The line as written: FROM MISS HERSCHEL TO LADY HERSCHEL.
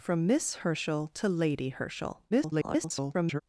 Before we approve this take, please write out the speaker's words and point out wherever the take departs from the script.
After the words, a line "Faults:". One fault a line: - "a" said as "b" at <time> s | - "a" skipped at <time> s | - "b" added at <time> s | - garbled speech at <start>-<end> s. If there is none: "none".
FROM MISS HERSCHEL TO LADY HERSCHEL. [garbled]
Faults:
- garbled speech at 2.3-3.4 s